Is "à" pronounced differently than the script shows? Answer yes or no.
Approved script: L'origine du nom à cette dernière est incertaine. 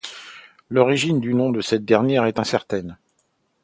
yes